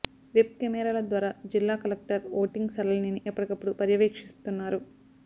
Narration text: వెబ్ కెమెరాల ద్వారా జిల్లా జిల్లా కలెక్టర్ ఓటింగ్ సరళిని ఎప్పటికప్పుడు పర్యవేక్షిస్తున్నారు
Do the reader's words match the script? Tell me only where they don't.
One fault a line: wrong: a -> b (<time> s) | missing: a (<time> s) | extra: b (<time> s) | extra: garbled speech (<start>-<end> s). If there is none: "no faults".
missing: జిల్లా (1.8 s)